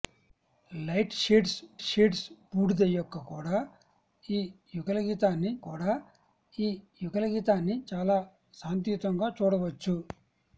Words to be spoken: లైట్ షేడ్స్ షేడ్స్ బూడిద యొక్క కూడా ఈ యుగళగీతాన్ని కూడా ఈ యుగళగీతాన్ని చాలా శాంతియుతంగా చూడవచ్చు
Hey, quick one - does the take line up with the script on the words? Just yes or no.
yes